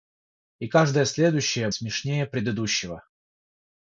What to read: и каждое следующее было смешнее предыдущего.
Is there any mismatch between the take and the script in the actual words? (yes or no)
yes